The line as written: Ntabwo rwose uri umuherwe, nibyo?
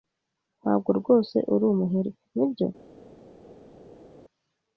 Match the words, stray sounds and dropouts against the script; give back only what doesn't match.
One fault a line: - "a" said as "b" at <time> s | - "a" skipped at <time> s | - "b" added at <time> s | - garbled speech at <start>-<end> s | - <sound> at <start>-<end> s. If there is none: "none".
none